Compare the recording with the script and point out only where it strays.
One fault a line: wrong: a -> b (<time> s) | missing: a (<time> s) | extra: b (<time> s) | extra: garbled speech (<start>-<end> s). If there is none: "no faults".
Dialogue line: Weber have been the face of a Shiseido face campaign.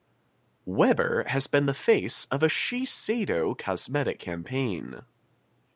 wrong: have -> has (1.3 s)
wrong: face -> cosmetic (3.6 s)